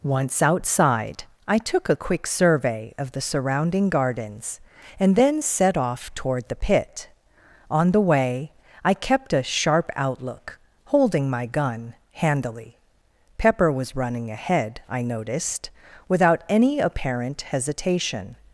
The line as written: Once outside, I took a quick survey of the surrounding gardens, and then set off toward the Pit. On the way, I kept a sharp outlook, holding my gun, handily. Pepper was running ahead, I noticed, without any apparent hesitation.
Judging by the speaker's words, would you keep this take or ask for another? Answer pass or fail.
pass